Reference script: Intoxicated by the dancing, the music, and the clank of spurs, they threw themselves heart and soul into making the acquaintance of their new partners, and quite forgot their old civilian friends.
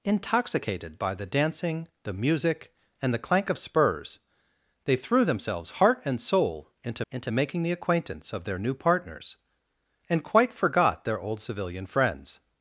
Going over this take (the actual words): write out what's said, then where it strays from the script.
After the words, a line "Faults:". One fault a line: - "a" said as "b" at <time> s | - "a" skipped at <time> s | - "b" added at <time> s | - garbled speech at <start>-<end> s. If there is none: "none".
Intoxicated by the dancing, the music, and the clank of spurs, they threw themselves heart and soul into into making the acquaintance of their new partners, and quite forgot their old civilian friends.
Faults:
- "into" added at 7.1 s